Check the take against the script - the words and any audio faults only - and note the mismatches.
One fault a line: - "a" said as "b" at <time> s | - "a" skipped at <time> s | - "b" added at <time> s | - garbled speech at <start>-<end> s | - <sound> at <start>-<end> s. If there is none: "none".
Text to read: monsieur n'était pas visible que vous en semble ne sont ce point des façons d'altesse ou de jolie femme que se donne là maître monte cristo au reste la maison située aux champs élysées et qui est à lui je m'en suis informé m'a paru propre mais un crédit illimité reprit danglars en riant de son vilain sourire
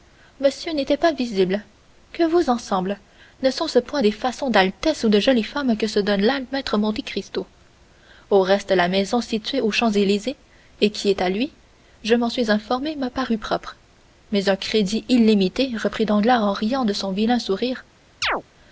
- chirp at 18.2-18.4 s